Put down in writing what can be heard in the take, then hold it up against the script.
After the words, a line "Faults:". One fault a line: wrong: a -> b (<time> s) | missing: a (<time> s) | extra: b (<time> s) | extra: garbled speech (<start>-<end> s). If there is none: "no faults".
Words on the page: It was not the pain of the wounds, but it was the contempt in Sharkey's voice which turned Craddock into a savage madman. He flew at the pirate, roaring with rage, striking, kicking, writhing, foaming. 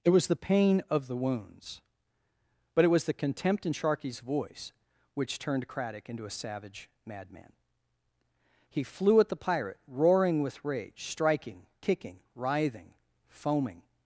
It was the pain of the wounds, but it was the contempt in Sharkey's voice which turned Craddock into a savage madman. He flew at the pirate, roaring with rage, striking, kicking, writhing, foaming.
Faults:
missing: not (0.3 s)